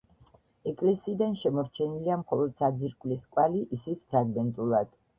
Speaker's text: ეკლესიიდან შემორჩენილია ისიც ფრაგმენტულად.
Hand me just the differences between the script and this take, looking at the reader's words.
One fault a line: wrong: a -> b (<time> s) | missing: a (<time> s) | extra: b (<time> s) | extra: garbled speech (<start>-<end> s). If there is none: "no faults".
extra: მხოლოდ საძირკვლის კვალი (2.2 s)